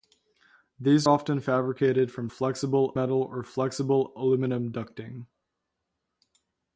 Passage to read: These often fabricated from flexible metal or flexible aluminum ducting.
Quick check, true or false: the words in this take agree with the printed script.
true